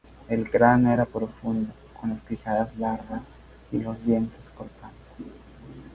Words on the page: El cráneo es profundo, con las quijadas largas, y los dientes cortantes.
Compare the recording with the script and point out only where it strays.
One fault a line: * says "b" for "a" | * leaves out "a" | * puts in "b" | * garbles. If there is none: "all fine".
* says "era" for "es"